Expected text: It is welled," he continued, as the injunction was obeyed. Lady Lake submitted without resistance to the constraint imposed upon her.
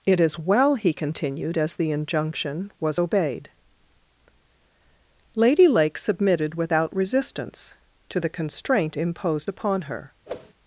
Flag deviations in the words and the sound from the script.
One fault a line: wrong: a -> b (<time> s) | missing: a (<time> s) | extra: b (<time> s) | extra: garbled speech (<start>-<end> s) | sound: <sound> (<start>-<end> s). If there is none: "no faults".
wrong: welled -> well (0.4 s)
sound: whoosh (10.3-10.5 s)